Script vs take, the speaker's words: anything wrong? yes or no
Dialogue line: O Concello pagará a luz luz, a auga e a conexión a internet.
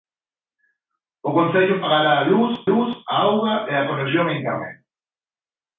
no